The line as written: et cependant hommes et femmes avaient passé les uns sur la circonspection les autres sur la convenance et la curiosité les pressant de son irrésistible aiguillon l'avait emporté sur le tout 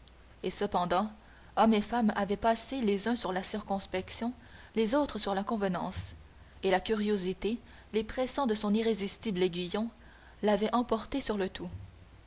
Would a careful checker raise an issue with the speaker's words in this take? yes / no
no